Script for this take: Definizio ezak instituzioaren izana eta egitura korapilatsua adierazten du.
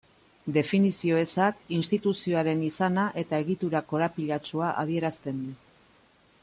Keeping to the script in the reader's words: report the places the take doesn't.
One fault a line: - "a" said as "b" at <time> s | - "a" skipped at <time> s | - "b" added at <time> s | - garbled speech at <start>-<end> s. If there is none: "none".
none